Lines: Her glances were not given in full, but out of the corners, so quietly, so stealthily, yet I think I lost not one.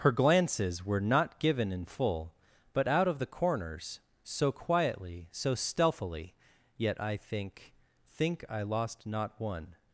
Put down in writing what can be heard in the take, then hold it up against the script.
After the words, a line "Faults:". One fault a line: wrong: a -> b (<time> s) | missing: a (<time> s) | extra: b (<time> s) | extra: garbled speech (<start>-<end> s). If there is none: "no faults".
Her glances were not given in full, but out of the corners, so quietly, so stealthily, yet I think think I lost not one.
Faults:
extra: think (8.1 s)